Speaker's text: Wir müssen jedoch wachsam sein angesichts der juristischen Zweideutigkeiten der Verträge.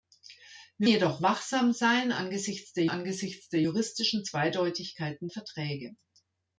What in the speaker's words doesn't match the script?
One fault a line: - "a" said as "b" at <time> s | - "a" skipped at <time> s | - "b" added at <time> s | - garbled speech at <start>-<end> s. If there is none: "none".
- "müssen" skipped at 0.9 s
- "angesichts der" added at 2.8 s
- "der" skipped at 5.3 s